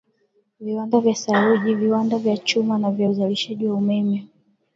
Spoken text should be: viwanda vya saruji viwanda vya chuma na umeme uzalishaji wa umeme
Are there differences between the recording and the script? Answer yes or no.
yes